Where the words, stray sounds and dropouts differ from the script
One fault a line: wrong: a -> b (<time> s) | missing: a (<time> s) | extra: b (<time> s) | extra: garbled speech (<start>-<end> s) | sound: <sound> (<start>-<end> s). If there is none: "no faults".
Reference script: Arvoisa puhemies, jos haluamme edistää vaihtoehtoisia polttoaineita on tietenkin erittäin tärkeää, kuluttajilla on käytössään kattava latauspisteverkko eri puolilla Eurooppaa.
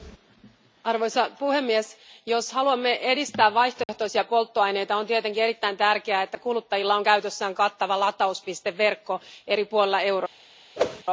sound: dropout (3.8-3.9 s)
extra: että (6.2 s)
sound: whoosh (10.8-11.0 s)